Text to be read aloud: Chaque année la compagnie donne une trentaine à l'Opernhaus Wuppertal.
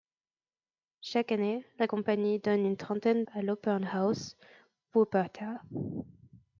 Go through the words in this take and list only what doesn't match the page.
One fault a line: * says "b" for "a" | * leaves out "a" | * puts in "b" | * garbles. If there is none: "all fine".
all fine